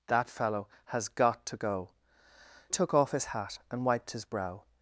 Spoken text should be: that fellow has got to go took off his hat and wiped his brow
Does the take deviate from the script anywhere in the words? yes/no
no